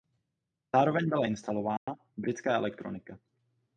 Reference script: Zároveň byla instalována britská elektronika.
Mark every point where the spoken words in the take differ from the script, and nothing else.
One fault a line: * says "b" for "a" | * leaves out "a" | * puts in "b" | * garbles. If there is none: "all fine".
all fine